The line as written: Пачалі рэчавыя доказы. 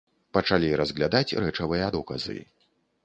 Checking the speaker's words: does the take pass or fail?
fail